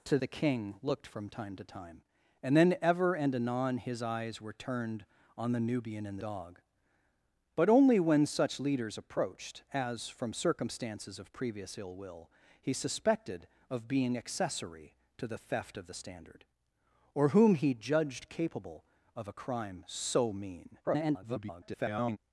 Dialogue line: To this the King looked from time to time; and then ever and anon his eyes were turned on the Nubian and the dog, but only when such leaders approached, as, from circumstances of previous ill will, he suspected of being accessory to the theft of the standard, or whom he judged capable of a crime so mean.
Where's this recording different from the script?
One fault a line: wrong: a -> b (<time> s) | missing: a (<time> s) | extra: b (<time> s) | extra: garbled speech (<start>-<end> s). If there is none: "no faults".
missing: this (0.2 s)
missing: the (6.2 s)
extra: garbled speech (20.8-22.2 s)